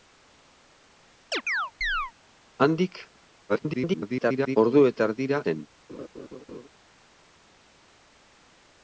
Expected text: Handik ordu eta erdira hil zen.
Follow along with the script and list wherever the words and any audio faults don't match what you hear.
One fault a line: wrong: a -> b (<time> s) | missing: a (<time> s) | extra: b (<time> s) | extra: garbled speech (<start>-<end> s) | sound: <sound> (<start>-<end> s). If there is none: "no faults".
sound: chirp (1.3-2.1 s)
extra: garbled speech (3.5-4.6 s)
missing: hil (5.4 s)
sound: laugh (5.9-6.7 s)